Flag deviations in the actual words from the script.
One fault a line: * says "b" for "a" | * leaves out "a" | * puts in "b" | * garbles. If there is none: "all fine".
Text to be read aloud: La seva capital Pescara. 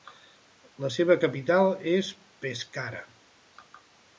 * puts in "és"